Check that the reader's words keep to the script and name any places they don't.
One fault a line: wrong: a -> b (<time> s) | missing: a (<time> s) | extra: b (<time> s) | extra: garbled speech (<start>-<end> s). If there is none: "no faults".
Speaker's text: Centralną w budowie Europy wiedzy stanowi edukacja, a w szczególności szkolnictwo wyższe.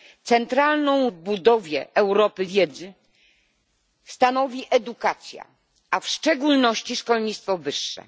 no faults